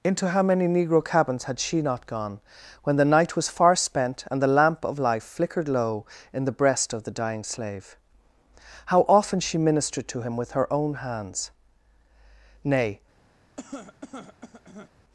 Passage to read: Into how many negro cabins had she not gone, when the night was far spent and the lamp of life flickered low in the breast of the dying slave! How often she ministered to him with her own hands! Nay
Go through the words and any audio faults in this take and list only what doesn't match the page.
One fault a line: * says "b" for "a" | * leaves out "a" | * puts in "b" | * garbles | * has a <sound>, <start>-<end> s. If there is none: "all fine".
* has a cough, 13.6-14.9 s